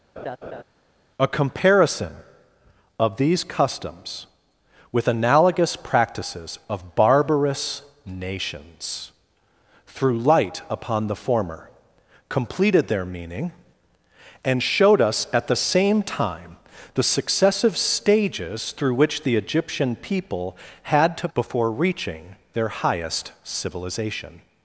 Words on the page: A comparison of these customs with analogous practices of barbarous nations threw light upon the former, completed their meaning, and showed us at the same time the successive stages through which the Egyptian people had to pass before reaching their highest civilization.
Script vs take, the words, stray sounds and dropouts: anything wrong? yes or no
yes